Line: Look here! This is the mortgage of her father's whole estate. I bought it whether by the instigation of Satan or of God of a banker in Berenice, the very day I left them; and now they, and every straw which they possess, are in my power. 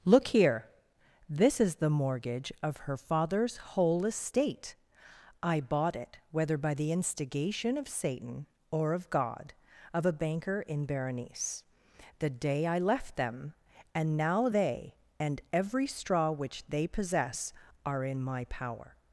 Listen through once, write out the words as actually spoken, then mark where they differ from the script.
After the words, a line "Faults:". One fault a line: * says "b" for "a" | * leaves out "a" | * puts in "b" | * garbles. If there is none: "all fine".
Look here! This is the mortgage of her father's whole estate. I bought it whether by the instigation of Satan or of God of a banker in Berenice, the day I left them; and now they, and every straw which they possess, are in my power.
Faults:
* leaves out "very"